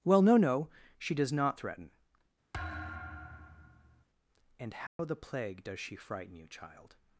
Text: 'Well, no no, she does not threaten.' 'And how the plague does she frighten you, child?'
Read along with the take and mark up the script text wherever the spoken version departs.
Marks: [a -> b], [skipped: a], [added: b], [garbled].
'Well, no no, she does not threaten.' 'And how the plague does she frighten you, child?'